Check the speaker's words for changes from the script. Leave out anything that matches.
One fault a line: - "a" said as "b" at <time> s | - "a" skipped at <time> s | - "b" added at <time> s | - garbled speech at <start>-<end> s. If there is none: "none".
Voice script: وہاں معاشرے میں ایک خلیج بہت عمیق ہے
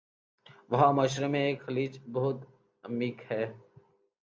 none